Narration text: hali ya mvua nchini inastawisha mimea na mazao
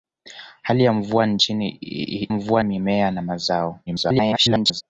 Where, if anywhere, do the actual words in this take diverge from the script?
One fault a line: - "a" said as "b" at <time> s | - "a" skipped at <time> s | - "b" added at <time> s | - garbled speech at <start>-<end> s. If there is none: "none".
- "inastawisha" said as "mvua" at 2.3 s
- garbled speech at 3.9-4.8 s